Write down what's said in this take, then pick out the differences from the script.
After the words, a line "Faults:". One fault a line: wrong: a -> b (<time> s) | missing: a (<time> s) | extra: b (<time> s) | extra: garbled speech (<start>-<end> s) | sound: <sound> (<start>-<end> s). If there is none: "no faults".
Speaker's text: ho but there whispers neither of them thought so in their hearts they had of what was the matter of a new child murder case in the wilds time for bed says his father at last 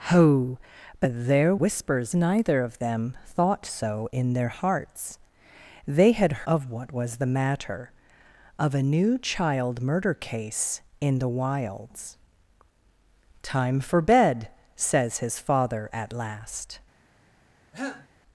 ho but there whispers neither of them thought so in their hearts they had of what was the matter of a new child murder case in the wilds time for bed says his father at last
Faults:
sound: cough (17.7-18.1 s)